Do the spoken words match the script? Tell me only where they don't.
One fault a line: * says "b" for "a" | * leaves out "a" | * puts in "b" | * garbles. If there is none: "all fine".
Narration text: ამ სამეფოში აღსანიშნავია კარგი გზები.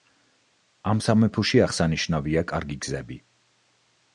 all fine